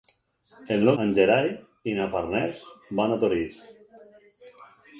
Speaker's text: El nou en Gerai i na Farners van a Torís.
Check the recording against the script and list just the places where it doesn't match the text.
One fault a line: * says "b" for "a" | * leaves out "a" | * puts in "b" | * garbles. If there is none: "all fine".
all fine